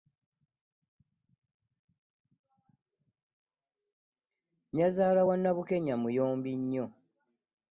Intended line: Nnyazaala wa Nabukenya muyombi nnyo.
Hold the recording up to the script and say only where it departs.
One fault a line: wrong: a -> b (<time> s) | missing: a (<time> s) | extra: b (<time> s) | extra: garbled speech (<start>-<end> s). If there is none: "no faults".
no faults